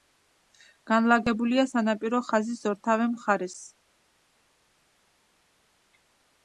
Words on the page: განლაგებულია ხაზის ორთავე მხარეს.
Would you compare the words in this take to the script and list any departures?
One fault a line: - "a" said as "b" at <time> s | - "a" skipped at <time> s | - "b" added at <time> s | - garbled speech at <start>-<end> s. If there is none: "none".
- "სანაპირო" added at 1.7 s